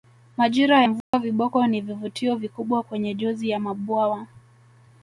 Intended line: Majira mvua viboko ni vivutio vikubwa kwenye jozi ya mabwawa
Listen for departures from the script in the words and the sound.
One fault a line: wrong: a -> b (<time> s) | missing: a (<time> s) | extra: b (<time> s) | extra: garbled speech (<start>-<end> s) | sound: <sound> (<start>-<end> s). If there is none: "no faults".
sound: dropout (1.0-1.1 s)